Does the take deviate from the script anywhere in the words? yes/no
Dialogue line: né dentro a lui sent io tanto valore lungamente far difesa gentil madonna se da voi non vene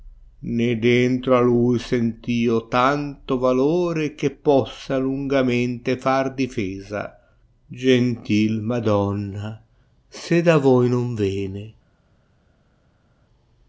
yes